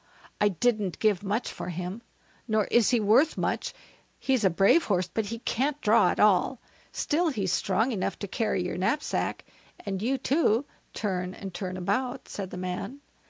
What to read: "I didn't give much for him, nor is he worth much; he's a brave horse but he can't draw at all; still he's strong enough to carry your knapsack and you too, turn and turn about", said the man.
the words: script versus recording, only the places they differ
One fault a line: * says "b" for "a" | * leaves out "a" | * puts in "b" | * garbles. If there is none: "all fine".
all fine